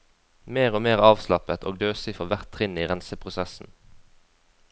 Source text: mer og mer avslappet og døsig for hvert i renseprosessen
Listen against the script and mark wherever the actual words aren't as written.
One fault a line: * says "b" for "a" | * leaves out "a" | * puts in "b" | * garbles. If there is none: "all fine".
* puts in "trinn"